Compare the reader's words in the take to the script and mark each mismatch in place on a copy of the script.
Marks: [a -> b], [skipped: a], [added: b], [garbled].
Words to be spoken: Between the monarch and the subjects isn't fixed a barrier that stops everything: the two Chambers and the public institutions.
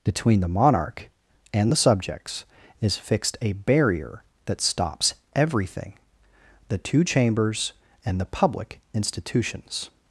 Between the monarch and the subjects [isn't -> is] fixed a barrier that stops everything: the two Chambers and the public institutions.